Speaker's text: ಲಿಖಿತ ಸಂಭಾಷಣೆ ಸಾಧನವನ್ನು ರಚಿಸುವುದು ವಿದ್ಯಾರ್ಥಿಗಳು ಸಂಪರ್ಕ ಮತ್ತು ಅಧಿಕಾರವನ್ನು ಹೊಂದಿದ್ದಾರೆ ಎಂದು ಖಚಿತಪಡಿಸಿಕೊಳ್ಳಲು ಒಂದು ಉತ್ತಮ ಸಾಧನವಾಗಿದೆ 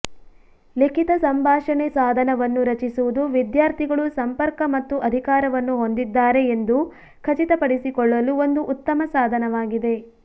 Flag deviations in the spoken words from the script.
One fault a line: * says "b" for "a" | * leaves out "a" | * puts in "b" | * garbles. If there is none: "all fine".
all fine